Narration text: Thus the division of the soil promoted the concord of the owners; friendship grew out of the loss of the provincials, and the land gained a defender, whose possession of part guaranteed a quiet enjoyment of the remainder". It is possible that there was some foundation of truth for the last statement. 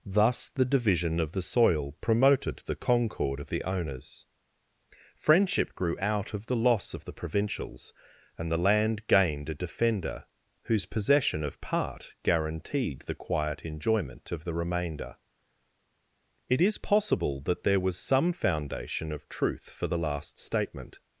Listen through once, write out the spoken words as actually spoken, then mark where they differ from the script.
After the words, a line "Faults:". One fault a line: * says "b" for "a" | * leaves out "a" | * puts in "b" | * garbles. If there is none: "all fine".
Thus the division of the soil promoted the concord of the owners; friendship grew out of the loss of the provincials, and the land gained a defender, whose possession of part guaranteed the quiet enjoyment of the remainder". It is possible that there was some foundation of truth for the last statement.
Faults:
* says "the" for "a"